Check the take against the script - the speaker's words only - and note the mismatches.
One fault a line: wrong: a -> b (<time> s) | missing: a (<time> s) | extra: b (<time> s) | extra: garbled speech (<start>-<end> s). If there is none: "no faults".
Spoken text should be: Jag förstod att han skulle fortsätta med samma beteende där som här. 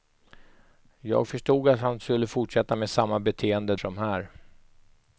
missing: där (3.8 s)